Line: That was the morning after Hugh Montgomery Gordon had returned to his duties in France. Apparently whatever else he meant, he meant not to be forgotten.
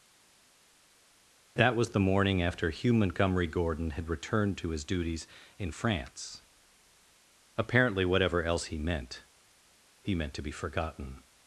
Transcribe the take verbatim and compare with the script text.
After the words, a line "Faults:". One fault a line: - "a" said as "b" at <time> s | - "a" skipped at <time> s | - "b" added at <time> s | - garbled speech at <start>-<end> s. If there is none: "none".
That was the morning after Hugh Montgomery Gordon had returned to his duties in France. Apparently whatever else he meant, he meant to be forgotten.
Faults:
- "not" skipped at 10.3 s